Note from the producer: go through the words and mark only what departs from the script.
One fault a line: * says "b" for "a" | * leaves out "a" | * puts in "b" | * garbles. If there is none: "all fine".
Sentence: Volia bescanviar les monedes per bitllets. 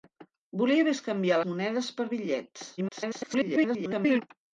* leaves out "les"
* garbles